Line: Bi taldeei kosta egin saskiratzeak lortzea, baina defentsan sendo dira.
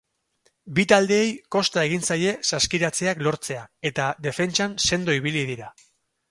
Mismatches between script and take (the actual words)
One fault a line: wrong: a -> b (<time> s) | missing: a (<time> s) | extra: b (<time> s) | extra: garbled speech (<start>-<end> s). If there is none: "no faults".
extra: zaie (2.1 s)
wrong: baina -> eta (3.9 s)
extra: ibili (5.2 s)